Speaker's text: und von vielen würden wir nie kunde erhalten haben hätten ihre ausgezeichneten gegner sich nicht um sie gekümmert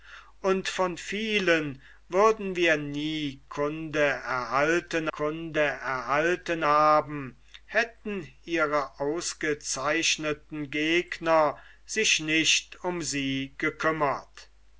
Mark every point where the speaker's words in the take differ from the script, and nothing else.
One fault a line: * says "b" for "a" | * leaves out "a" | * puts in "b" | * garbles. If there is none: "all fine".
* puts in "kunde erhalten"